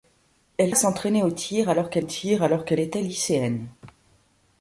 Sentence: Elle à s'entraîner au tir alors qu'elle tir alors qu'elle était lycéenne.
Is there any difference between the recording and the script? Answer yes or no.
no